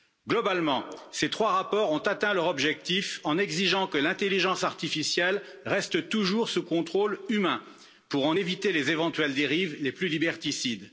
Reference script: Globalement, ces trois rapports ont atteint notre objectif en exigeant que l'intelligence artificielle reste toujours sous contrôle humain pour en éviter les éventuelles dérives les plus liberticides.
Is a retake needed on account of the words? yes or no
yes